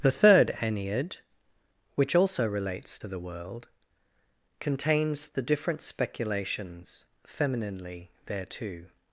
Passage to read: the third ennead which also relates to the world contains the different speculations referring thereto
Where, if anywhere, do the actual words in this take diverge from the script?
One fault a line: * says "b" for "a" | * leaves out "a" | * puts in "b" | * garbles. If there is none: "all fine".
* says "femininely" for "referring"